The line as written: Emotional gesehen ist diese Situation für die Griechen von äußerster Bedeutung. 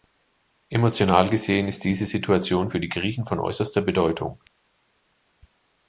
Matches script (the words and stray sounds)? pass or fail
pass